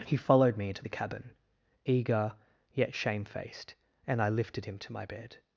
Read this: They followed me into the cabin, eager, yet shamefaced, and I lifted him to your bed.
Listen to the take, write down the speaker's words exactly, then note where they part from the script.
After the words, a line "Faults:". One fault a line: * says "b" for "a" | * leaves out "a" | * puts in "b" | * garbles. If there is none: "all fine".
He followed me into the cabin, eager, yet shamefaced, and I lifted him to my bed.
Faults:
* says "He" for "They"
* says "my" for "your"